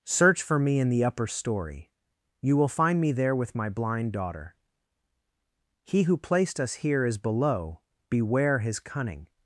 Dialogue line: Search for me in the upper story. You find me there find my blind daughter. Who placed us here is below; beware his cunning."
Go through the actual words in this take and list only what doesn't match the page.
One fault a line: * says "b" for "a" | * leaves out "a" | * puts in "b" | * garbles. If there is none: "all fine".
* puts in "will"
* says "with" for "find"
* puts in "He"